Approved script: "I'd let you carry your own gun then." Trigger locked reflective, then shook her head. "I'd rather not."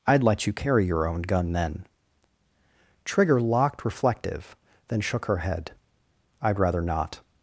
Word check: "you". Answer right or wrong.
right